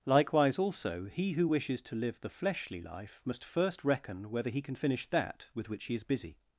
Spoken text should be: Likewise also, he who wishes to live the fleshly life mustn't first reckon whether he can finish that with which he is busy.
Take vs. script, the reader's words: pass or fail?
fail